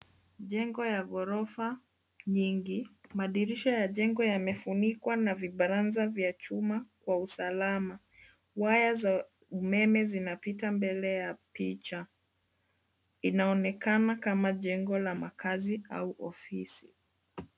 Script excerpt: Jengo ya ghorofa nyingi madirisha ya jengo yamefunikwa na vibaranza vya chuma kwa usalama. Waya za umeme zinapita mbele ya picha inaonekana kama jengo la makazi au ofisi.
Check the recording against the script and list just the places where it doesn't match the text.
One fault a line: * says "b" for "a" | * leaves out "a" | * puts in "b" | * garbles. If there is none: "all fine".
all fine